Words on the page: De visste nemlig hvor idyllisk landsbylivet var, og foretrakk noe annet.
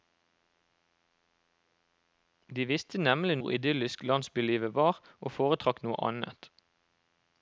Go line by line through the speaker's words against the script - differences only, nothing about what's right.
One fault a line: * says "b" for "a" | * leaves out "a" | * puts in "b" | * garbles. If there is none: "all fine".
all fine